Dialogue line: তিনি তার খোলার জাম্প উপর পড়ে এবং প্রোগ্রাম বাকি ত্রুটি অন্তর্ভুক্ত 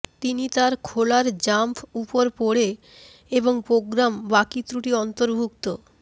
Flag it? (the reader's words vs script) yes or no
no